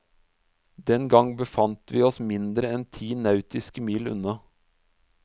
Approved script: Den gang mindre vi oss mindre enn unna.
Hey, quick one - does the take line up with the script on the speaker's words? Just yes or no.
no